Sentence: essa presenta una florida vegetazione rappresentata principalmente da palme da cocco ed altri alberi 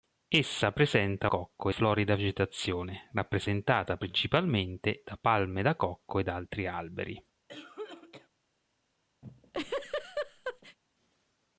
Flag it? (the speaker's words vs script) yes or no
yes